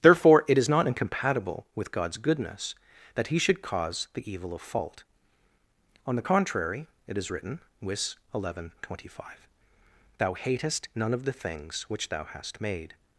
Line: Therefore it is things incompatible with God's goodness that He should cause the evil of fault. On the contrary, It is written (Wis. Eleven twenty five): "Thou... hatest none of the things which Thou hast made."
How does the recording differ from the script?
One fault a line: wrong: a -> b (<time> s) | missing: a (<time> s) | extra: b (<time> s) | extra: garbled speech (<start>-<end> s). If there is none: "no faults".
wrong: things -> not (0.7 s)